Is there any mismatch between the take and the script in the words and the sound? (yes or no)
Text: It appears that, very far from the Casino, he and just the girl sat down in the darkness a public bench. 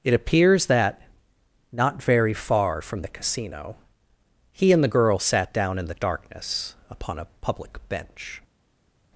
yes